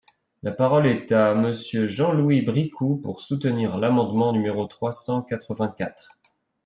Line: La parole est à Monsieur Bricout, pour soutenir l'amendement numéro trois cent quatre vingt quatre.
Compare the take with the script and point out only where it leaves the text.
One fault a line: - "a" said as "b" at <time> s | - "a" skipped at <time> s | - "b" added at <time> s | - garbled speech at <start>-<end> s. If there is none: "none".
- "Jean Louis" added at 1.9 s